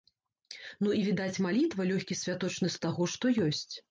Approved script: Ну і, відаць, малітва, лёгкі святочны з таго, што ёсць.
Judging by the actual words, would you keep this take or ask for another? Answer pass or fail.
pass